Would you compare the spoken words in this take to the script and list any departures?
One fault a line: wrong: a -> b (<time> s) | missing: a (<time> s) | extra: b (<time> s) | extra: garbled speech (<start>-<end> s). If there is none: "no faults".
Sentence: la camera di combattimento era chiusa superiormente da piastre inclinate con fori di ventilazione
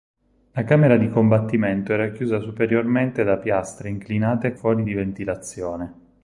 missing: con (4.5 s)